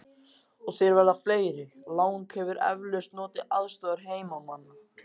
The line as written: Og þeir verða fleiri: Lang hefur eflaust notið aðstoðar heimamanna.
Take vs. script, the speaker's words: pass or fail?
pass